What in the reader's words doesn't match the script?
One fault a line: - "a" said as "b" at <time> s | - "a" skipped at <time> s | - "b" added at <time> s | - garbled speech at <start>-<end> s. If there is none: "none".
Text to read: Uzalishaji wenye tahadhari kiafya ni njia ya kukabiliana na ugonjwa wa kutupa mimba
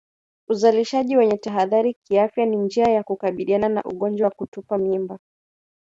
none